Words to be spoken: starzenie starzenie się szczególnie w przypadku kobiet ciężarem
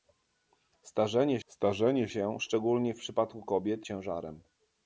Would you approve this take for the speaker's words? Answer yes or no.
yes